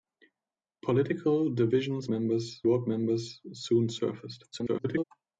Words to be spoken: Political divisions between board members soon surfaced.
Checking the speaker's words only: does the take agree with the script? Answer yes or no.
no